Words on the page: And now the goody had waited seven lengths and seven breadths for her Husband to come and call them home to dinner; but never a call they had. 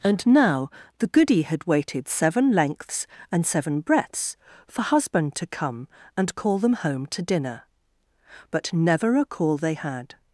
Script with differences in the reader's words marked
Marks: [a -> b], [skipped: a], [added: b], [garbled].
And now the goody had waited seven lengths and seven breadths for [skipped: her] Husband to come and call them home to dinner; but never a call they had.